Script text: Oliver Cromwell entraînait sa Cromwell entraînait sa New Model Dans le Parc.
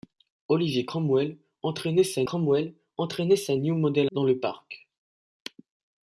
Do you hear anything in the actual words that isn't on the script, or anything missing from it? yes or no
no